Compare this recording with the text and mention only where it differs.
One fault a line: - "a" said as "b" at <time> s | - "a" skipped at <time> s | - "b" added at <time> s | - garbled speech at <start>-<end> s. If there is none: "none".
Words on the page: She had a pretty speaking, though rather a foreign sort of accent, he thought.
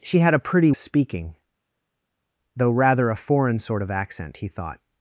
none